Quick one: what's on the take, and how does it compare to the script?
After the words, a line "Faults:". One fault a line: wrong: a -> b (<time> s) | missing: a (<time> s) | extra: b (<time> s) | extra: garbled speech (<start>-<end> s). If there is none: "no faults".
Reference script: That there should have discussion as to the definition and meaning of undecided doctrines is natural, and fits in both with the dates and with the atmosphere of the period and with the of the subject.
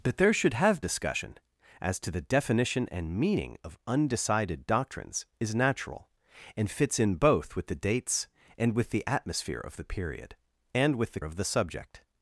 That there should have discussion as to the definition and meaning of undecided doctrines is natural, and fits in both with the dates and with the atmosphere of the period and with the of the subject.
Faults:
no faults